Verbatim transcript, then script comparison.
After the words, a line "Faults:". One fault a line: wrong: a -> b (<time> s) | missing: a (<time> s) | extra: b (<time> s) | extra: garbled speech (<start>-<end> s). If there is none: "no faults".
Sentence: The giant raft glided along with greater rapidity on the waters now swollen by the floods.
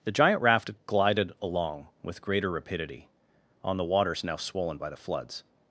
The giant raft glided along with greater rapidity on the waters now swollen by the floods.
Faults:
no faults